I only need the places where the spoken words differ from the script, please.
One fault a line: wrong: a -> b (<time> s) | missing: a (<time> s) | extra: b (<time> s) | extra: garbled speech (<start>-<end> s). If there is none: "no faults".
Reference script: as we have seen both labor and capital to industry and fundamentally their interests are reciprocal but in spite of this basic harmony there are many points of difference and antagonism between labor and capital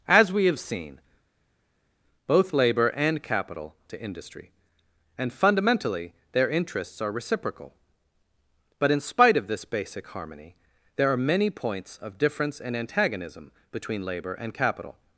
no faults